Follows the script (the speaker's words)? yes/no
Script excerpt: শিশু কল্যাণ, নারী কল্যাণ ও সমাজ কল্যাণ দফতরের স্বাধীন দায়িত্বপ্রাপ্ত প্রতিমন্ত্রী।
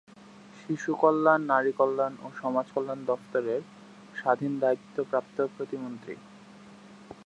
yes